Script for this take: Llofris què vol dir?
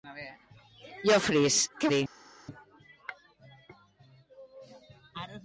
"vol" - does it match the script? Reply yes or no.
no